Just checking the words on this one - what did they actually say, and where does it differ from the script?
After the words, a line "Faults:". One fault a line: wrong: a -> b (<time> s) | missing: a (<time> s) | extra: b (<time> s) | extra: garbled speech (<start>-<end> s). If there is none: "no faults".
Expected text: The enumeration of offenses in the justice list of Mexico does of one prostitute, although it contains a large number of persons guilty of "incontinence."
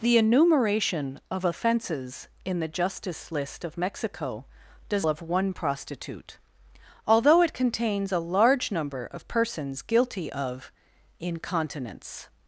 The enumeration of offenses in the justice list of Mexico does of one prostitute, although it contains a large number of persons guilty of "incontinence."
Faults:
no faults